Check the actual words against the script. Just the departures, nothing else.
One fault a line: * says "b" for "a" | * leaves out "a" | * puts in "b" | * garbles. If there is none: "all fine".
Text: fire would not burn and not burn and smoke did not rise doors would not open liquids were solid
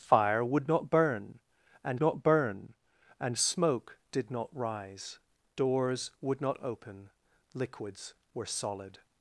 all fine